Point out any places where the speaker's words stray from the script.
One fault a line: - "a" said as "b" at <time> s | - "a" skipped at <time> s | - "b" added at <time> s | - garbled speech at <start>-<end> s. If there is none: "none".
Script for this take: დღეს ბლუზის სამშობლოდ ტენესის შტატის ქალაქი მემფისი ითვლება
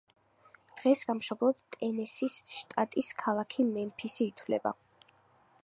- "ბლუზის" skipped at 1.0 s